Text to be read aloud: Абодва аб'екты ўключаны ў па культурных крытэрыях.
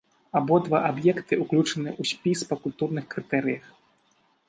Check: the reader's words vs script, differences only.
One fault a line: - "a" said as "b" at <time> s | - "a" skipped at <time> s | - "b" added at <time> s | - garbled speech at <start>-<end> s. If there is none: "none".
- "спіс" added at 2.1 s